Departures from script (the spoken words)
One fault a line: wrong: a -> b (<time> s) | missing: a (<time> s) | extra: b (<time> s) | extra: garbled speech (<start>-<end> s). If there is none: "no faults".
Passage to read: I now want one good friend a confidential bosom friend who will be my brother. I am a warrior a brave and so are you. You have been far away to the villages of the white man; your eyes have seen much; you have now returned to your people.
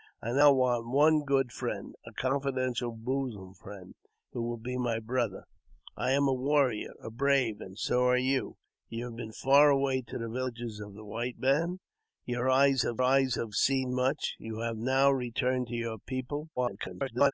extra: eyes have (13.0 s)
extra: garbled speech (16.6-17.3 s)